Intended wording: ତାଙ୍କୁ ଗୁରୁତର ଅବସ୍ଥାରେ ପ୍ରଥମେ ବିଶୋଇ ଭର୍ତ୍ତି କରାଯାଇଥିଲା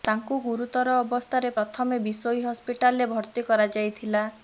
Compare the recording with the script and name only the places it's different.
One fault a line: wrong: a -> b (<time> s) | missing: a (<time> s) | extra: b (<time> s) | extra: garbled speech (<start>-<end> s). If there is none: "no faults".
extra: ହସ୍ପିଟାଲରେ (2.5 s)